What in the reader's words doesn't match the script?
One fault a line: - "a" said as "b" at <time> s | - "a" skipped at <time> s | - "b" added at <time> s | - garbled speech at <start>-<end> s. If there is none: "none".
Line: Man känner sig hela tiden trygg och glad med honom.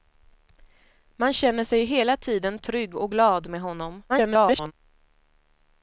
- garbled speech at 4.1-4.7 s